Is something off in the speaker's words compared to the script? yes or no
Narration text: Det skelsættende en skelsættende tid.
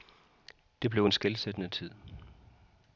yes